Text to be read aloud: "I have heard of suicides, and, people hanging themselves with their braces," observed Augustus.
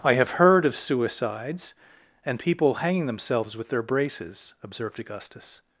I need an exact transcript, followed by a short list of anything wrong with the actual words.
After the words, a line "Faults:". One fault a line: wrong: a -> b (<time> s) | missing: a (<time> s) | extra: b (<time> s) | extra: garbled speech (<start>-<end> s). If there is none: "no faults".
"I have heard of suicides, and, people hanging themselves with their braces," observed Augustus.
Faults:
no faults